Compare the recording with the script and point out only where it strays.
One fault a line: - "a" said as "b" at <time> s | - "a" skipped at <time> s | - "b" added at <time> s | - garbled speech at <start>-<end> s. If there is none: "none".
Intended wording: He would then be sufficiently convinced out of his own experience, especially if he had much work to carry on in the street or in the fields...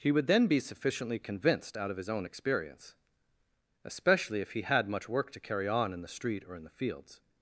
none